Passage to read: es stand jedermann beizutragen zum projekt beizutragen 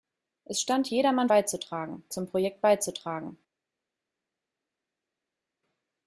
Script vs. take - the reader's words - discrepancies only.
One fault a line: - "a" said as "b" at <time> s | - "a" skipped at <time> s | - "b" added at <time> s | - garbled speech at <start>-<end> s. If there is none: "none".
none